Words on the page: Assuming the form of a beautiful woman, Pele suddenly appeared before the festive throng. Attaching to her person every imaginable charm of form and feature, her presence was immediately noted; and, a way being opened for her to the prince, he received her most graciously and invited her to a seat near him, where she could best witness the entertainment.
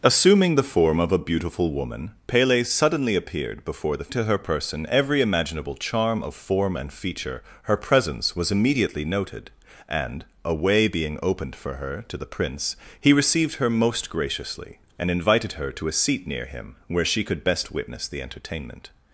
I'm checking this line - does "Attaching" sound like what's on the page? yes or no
no